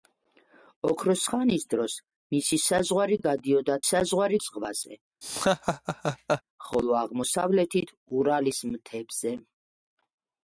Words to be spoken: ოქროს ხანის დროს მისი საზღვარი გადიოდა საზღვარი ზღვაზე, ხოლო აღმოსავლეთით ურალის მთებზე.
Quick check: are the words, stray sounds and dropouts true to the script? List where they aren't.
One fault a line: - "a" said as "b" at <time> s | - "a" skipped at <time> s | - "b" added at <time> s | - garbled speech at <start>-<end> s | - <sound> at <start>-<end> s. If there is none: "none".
- laugh at 5.2-6.4 s